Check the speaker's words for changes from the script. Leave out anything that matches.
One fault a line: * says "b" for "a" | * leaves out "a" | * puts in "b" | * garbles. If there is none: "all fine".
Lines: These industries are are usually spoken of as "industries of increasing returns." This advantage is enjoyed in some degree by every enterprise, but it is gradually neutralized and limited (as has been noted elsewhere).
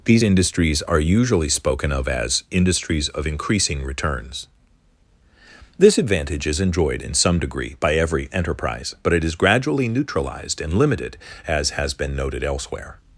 * leaves out "are"